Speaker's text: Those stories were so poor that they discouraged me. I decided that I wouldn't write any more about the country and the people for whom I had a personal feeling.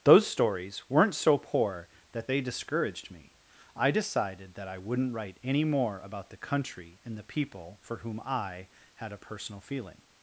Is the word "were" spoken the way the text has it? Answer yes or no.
no